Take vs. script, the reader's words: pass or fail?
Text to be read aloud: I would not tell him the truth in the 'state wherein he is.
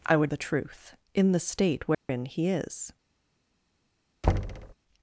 fail